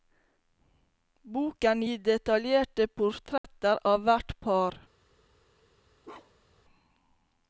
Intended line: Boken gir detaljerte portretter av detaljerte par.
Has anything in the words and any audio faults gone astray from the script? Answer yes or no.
yes